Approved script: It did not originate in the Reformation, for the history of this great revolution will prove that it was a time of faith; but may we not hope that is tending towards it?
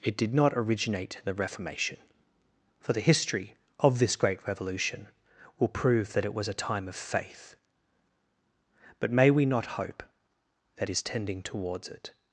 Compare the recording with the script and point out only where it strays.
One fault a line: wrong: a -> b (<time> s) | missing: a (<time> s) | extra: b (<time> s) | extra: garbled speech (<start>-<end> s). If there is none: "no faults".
no faults